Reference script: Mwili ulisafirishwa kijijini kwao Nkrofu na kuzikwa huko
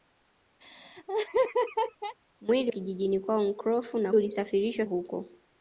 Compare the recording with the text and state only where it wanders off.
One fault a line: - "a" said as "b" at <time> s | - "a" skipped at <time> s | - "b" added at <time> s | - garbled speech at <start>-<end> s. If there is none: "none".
- "ulisafirishwa" skipped at 2.7 s
- "kuzikwa" said as "ulisafirishwa" at 4.1 s